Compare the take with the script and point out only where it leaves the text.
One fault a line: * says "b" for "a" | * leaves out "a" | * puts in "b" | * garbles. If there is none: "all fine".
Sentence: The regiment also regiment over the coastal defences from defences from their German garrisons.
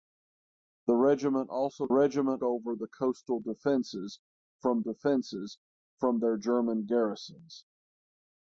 all fine